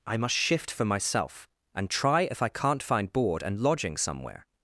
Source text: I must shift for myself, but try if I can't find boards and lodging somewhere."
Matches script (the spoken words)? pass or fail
fail